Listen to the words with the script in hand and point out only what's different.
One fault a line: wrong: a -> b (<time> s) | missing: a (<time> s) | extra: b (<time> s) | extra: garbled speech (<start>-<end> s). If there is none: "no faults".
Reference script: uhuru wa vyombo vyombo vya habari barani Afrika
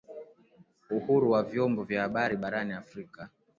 missing: vyombo (1.8 s)